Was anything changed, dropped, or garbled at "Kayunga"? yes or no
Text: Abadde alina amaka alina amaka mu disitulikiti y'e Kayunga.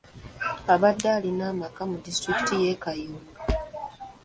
no